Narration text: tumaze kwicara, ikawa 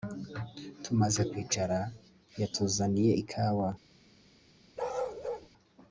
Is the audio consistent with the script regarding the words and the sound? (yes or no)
no